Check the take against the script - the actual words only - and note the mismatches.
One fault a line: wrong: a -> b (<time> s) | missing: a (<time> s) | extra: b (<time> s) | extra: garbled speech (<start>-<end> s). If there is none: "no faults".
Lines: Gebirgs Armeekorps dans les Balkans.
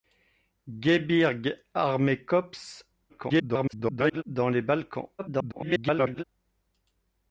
extra: garbled speech (3.1-4.2 s)
extra: garbled speech (5.2-6.2 s)